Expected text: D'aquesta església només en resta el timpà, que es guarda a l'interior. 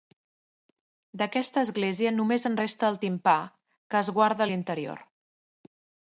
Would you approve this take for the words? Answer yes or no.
yes